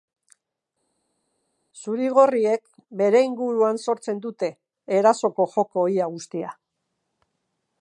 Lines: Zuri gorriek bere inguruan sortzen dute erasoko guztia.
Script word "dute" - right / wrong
right